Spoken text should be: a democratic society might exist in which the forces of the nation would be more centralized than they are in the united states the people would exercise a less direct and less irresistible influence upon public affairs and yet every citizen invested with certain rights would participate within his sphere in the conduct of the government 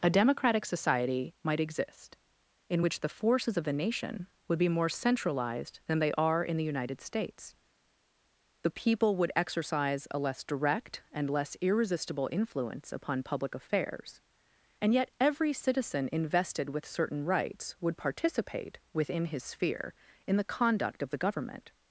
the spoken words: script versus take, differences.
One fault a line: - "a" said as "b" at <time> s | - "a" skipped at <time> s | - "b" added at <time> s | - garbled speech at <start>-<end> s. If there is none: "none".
none